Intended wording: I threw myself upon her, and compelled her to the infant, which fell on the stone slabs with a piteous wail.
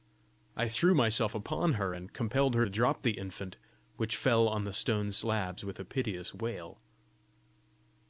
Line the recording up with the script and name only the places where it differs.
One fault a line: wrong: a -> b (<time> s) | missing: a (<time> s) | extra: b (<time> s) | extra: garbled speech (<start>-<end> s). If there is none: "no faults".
extra: drop (2.7 s)